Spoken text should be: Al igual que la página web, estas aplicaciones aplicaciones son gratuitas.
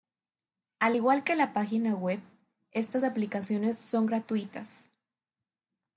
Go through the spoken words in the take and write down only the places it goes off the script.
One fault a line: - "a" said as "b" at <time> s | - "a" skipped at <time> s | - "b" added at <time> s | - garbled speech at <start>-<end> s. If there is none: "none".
- "aplicaciones" skipped at 3.8 s